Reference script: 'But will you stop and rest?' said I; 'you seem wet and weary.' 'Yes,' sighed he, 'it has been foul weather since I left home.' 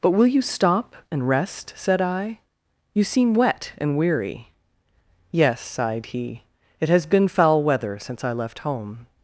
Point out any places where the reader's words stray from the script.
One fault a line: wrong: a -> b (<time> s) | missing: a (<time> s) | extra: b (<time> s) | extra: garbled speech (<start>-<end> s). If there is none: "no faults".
no faults